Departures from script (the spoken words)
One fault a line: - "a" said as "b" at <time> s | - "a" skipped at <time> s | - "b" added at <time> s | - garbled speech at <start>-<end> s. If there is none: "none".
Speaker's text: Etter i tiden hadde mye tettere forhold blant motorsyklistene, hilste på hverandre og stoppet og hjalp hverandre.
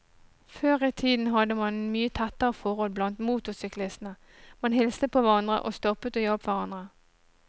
- "Etter" said as "Før" at 0.5 s
- "man" added at 1.6 s
- "man" added at 4.6 s